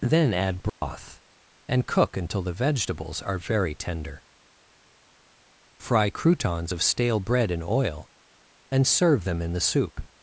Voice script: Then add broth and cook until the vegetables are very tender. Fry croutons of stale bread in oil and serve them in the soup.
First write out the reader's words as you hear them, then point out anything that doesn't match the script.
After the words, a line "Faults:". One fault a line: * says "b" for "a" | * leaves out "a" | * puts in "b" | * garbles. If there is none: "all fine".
Then add broth and cook until the vegetables are very tender. Fry croutons of stale bread in oil and serve them in the soup.
Faults:
all fine